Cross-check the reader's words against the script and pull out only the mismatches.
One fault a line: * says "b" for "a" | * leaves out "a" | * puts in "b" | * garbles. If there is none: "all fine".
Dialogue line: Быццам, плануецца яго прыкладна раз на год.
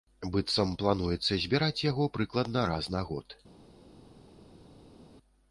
* puts in "збіраць"